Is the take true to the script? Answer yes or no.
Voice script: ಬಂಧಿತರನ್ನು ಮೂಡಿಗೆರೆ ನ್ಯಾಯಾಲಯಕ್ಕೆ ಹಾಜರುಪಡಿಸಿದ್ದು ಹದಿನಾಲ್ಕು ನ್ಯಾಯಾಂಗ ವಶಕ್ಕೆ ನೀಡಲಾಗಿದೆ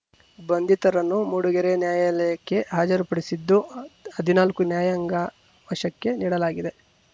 yes